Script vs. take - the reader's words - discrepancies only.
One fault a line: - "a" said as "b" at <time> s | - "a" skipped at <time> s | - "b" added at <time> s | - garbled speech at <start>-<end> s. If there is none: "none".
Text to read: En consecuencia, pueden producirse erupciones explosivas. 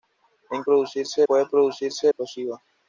- "consecuencia" said as "producirse" at 0.6 s
- "erupciones" skipped at 2.1 s